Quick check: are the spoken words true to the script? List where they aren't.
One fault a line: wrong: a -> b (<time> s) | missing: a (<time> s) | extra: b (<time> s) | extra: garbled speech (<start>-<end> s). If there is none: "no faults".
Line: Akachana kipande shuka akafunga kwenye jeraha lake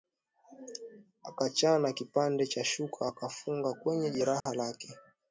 extra: cha (2.5 s)